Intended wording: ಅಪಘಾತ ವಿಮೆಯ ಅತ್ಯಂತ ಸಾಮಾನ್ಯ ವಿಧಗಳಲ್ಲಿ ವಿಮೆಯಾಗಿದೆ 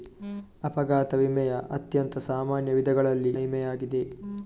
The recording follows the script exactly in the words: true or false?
true